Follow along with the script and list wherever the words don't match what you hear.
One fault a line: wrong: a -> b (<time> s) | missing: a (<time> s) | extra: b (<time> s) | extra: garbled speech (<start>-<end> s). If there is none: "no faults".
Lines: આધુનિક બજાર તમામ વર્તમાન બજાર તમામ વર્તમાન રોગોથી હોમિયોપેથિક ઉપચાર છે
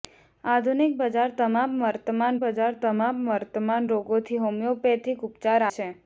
no faults